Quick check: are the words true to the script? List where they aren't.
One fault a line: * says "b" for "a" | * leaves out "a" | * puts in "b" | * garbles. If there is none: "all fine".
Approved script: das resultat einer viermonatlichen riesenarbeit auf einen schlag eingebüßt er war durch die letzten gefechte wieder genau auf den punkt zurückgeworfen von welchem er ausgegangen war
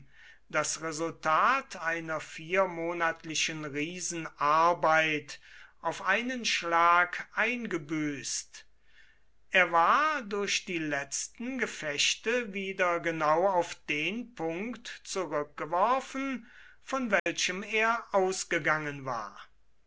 all fine